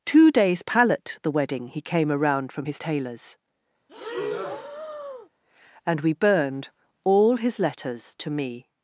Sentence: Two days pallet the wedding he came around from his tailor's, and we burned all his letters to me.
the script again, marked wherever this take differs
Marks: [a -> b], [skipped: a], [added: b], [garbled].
Two days pallet the wedding he came around from his tailor's, and we burned all his letters to me.